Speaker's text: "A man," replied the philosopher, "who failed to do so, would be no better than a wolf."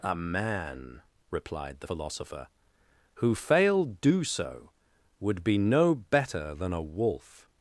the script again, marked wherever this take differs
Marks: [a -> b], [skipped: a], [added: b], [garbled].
"A man," replied the philosopher, "who failed [skipped: to] do so, would be no better than a wolf."